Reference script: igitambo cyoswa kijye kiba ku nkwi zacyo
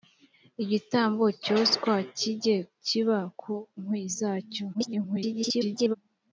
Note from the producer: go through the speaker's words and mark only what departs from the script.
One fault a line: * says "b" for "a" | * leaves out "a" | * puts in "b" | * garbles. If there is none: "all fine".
* garbles